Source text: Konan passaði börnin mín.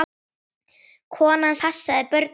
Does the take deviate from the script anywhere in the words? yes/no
no